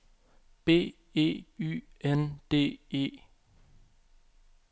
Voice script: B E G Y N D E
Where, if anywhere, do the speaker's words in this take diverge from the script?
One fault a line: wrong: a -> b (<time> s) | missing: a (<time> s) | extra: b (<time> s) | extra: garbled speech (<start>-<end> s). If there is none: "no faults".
missing: G (1.4 s)